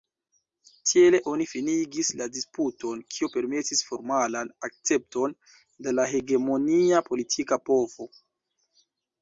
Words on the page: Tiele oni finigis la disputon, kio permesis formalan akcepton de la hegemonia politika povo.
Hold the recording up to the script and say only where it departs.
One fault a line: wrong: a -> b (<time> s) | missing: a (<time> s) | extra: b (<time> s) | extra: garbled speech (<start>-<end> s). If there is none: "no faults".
no faults